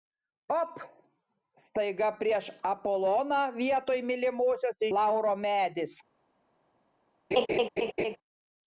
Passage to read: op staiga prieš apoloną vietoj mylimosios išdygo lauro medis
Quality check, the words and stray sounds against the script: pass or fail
fail